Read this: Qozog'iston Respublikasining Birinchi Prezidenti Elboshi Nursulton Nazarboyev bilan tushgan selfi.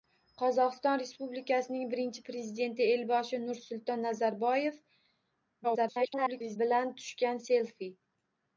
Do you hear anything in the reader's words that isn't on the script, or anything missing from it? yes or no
yes